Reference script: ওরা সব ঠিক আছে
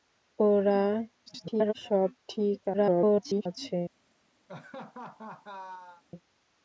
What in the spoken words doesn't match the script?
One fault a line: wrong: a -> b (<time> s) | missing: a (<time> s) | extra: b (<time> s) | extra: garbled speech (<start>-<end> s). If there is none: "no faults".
extra: garbled speech (1.3-1.7 s)
extra: garbled speech (2.7-3.5 s)